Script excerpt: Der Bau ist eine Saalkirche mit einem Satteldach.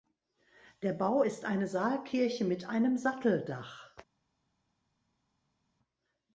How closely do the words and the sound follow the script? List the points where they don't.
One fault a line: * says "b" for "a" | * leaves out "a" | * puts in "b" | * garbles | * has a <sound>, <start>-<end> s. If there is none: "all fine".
all fine